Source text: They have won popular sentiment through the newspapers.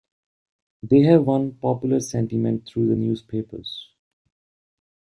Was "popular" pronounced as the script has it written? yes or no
yes